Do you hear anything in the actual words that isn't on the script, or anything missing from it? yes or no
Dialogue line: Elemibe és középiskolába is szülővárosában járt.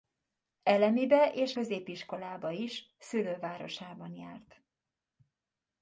no